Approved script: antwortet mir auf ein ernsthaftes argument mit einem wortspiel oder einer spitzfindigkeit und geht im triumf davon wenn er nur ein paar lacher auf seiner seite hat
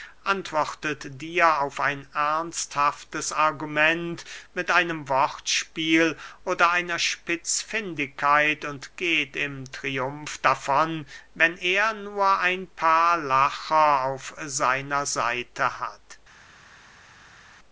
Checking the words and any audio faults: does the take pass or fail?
fail